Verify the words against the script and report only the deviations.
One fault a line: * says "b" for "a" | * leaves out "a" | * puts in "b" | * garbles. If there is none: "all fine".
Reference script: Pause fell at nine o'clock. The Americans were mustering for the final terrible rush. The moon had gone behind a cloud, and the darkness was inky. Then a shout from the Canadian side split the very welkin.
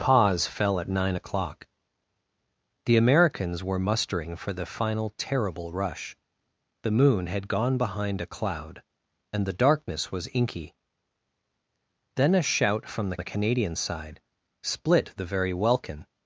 * puts in "the"